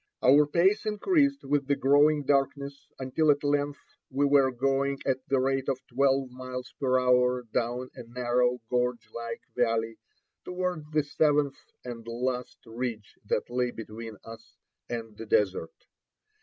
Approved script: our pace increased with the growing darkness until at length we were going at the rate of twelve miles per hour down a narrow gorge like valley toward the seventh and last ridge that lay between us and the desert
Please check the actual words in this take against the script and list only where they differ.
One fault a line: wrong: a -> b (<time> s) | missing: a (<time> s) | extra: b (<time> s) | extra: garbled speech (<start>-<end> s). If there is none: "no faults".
no faults